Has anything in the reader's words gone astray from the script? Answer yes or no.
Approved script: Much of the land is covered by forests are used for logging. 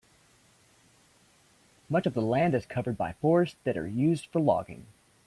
yes